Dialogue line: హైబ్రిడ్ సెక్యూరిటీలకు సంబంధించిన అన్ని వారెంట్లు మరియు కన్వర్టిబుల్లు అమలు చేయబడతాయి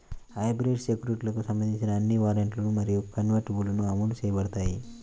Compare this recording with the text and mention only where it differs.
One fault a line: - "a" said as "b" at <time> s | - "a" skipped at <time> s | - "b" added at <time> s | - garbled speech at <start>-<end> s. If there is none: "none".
none